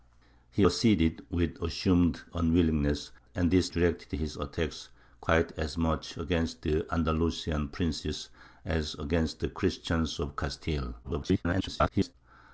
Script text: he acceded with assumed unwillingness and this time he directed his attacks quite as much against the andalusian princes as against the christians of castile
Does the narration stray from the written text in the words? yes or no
yes